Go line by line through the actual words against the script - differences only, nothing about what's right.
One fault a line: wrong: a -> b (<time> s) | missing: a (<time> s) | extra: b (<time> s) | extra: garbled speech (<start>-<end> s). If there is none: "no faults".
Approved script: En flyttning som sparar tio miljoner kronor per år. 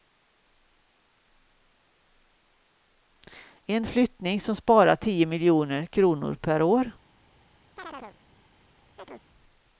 no faults